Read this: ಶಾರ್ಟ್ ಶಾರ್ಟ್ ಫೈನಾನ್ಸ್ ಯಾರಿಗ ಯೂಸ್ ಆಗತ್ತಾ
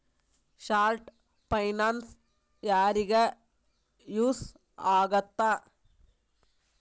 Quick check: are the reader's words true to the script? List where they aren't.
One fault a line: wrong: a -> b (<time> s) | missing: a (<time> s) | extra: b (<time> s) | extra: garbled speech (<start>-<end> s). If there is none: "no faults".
missing: ಶಾರ್ಟ್ (1.1 s)